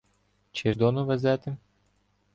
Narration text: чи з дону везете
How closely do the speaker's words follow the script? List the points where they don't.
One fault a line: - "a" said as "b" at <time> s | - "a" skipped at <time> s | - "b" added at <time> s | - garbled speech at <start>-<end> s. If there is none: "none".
none